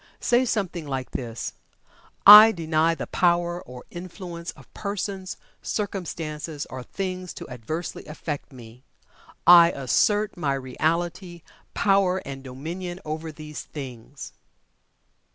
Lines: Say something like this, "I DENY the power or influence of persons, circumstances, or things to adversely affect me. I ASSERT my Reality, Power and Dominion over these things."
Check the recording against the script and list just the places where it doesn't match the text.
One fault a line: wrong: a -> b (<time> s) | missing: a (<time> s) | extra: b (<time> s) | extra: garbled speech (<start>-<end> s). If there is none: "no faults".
no faults